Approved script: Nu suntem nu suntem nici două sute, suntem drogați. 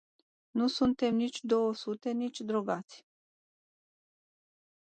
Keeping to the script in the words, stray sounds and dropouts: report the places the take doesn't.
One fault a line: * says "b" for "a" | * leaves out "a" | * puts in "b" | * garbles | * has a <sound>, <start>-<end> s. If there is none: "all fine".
* leaves out "nu suntem"
* says "nici" for "suntem"